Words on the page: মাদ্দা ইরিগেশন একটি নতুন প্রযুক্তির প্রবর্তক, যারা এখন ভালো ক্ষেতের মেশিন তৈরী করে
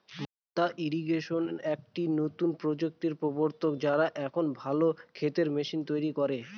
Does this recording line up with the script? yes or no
yes